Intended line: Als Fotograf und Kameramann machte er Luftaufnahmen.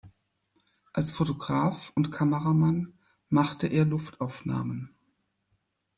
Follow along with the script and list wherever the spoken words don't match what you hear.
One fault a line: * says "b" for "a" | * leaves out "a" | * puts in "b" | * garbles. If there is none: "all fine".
all fine